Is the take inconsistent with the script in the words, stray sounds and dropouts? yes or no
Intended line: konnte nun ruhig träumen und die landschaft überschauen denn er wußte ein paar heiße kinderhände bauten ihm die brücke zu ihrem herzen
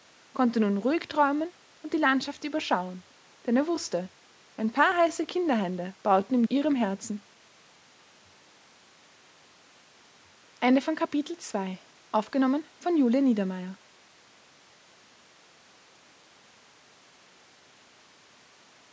yes